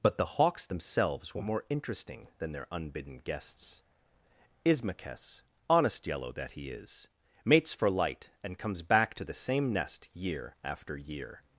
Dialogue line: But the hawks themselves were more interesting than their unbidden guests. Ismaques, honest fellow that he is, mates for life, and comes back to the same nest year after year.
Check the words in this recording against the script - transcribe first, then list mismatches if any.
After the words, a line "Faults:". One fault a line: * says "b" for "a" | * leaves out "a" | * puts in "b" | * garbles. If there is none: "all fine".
But the hawks themselves were more interesting than their unbidden guests. Ismaques, honest yellow that he is, mates for light, and comes back to the same nest year after year.
Faults:
* says "yellow" for "fellow"
* says "light" for "life"